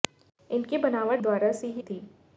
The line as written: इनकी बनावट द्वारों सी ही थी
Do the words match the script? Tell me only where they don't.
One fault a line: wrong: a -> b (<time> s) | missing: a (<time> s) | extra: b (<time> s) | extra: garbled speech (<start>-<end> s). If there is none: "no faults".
no faults